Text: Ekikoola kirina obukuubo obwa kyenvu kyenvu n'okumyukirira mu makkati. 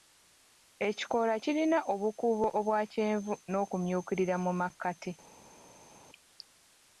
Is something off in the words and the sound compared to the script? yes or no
yes